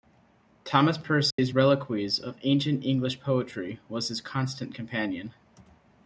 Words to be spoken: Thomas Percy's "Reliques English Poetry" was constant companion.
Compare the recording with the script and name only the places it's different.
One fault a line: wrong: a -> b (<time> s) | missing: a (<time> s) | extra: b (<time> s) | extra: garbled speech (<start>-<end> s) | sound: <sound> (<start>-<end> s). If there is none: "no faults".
sound: dropout (1.3-1.4 s)
extra: of Ancient (2.2 s)
extra: his (4.1 s)